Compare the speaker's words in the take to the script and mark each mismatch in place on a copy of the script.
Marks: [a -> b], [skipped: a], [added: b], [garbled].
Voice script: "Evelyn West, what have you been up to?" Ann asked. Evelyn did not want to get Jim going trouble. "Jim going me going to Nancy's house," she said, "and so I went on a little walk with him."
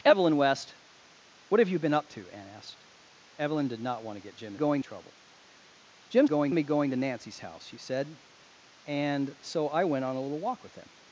"Evelyn West, what have you been up to?" Ann asked. Evelyn did not want to get Jim going trouble. "Jim going me going to Nancy's house," she said, "and so I went on a little walk with him."